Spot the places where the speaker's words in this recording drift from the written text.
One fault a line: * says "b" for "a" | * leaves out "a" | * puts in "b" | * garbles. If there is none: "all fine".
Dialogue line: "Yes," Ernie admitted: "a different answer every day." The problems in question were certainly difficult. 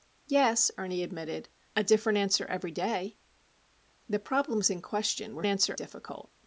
* says "answer" for "certainly"